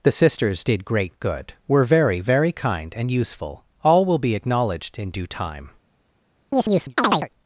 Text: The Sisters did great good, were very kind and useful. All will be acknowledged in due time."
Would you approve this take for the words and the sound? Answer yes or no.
no